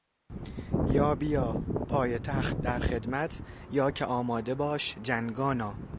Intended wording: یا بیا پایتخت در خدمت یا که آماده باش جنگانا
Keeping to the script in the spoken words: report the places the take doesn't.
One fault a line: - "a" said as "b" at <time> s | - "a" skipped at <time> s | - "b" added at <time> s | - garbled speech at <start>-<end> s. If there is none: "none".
none